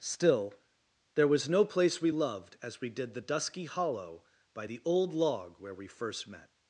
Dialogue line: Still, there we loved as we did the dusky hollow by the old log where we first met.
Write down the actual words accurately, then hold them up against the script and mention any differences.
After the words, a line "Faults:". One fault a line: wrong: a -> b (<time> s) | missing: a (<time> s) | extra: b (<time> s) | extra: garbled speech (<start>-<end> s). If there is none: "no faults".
Still, there was no place we loved as we did the dusky hollow by the old log where we first met.
Faults:
extra: was no place (1.3 s)